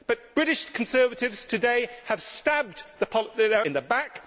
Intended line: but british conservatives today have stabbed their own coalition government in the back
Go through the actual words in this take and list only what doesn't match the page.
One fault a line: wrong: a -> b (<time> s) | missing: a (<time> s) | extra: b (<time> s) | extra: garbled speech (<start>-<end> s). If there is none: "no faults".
missing: own coalition government (3.6 s)